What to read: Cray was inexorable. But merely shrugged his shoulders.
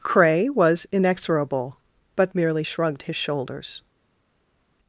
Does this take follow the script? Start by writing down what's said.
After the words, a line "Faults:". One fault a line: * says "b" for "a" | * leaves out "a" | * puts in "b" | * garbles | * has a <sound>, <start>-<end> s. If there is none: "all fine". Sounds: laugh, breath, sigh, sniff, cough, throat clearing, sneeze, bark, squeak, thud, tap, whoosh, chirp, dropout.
Cray was inexorable. But merely shrugged his shoulders.
Faults:
all fine